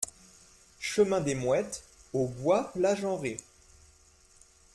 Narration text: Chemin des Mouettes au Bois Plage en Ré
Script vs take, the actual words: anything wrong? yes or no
no